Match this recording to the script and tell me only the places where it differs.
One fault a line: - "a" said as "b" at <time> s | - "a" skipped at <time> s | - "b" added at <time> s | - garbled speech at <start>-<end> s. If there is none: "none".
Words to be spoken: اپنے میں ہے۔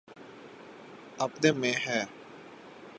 none